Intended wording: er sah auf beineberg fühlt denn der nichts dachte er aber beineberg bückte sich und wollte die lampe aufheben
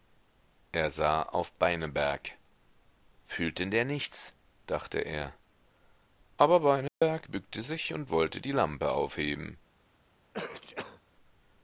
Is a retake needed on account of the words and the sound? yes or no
yes